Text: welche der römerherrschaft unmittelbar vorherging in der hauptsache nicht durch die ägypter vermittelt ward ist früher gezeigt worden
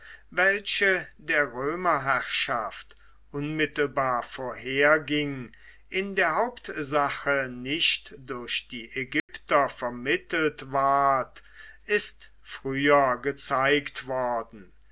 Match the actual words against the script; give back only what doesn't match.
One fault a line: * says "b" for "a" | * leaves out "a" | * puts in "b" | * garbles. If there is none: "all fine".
all fine